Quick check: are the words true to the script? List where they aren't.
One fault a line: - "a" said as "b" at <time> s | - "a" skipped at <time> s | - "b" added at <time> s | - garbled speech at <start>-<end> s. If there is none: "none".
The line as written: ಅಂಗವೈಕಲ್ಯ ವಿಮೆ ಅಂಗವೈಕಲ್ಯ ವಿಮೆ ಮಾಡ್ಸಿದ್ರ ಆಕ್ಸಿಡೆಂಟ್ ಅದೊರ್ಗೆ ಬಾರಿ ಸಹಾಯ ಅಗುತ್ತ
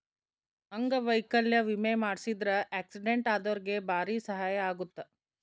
- "ಅಂಗವೈಕಲ್ಯ ವಿಮೆ" skipped at 1.9 s